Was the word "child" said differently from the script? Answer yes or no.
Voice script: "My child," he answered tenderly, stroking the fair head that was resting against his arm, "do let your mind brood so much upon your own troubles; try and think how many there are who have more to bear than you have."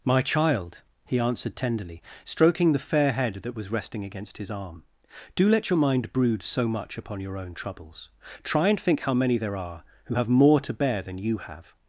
no